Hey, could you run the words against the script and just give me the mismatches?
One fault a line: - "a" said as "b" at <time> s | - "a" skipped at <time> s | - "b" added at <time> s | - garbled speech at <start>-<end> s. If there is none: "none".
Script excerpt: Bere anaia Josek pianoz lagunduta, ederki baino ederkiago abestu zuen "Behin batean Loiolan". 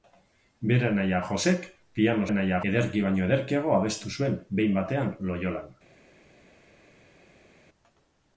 - "lagunduta" said as "anaia" at 2.3 s